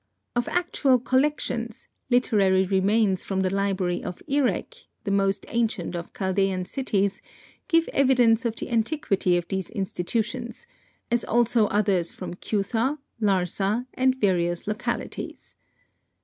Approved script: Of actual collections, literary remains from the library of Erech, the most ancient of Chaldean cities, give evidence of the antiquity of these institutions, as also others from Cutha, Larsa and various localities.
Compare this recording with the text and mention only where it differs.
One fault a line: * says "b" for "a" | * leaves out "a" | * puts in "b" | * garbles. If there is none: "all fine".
all fine